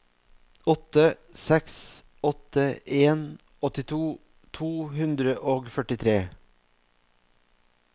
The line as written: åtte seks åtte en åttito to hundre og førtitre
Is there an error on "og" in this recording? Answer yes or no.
no